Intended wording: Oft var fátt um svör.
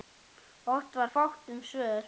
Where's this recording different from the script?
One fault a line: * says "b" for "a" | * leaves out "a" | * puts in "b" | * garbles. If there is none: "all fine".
all fine